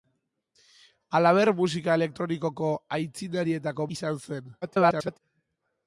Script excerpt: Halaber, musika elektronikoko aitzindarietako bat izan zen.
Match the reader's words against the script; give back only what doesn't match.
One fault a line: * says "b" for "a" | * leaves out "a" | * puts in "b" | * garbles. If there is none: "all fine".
* leaves out "bat"
* garbles